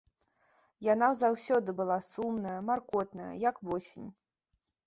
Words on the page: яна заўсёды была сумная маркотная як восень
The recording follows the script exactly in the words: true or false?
true